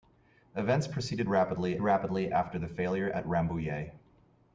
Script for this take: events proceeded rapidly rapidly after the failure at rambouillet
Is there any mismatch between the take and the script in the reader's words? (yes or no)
no